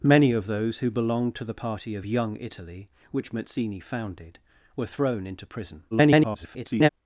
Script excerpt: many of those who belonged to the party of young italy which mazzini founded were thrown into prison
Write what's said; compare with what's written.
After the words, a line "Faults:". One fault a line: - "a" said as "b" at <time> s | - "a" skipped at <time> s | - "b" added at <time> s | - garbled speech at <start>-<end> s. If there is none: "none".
many of those who belonged to the party of young italy which mazzini founded were thrown into prison [garbled]
Faults:
- garbled speech at 5.9-6.9 s